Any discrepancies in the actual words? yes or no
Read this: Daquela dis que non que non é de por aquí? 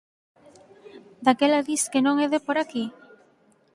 yes